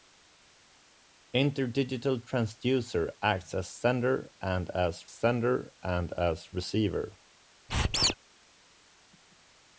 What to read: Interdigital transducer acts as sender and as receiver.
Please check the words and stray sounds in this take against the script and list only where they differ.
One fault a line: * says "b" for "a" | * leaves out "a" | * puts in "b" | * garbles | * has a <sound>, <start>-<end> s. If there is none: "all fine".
* puts in "sender and as"
* has a squeak, 7.7-8.1 s